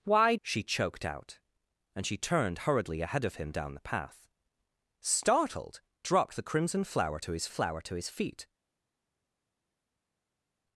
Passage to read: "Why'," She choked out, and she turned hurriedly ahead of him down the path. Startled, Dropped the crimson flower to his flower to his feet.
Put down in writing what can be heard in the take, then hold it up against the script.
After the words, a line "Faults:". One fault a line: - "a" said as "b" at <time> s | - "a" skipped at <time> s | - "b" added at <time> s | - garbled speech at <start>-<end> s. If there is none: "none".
"Why'," She choked out, and she turned hurriedly ahead of him down the path. Startled, Dropped the crimson flower to his flower to his feet.
Faults:
none